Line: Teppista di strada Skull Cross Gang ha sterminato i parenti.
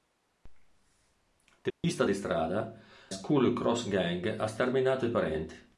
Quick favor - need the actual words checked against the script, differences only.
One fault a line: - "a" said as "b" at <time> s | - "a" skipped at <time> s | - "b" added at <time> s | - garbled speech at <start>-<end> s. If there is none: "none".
none